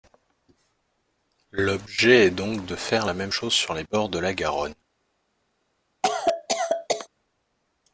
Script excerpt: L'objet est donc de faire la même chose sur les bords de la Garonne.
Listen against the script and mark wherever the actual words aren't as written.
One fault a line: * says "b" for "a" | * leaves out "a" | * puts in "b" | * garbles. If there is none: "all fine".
all fine